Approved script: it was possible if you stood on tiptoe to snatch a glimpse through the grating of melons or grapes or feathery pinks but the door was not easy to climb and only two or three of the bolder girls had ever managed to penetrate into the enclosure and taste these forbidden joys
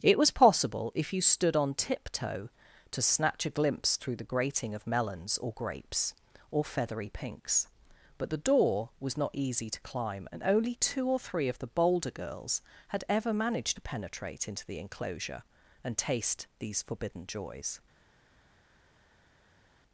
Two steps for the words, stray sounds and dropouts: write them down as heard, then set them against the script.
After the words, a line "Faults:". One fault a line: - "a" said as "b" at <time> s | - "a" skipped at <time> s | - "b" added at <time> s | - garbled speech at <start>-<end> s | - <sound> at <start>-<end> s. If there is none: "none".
it was possible if you stood on tiptoe to snatch a glimpse through the grating of melons or grapes or feathery pinks but the door was not easy to climb and only two or three of the bolder girls had ever managed to penetrate into the enclosure and taste these forbidden joys
Faults:
none